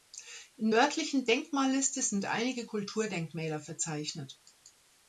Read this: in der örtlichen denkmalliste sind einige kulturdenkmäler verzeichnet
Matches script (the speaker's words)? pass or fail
fail